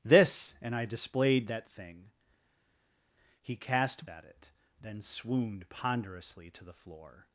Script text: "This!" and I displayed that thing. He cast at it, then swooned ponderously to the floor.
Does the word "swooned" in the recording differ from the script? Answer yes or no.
no